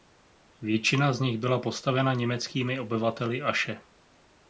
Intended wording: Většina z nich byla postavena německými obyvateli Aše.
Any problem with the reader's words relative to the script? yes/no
no